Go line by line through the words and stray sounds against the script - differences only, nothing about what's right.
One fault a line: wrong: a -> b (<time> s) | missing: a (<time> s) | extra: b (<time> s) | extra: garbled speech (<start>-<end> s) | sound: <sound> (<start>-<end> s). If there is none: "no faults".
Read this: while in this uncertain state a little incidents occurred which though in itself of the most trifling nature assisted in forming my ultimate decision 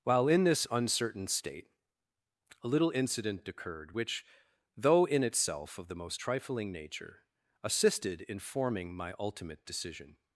wrong: incidents -> incident (2.9 s)